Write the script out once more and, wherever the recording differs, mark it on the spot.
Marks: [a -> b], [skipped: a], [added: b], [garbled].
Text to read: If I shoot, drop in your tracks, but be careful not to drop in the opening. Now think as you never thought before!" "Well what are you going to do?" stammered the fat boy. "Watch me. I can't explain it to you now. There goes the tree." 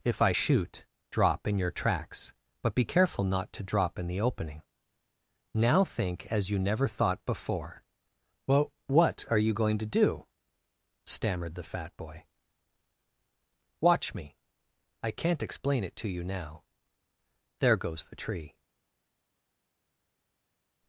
If I shoot, drop in your tracks, but be careful not to drop in the opening. Now think as you never thought before!" "Well what are you going to do?" stammered the fat boy. "Watch me. I can't explain it to you now. There goes the tree."